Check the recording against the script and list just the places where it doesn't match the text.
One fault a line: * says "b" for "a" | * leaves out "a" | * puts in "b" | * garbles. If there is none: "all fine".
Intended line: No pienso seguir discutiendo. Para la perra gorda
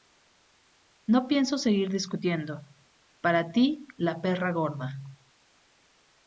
* puts in "ti"